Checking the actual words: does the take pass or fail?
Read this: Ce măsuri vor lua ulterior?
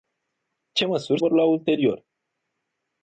pass